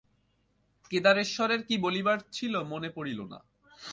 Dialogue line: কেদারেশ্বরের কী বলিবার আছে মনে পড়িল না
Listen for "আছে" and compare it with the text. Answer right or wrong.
wrong